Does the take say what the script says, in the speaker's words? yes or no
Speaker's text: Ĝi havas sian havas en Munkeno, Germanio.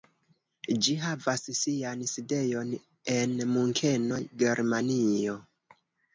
no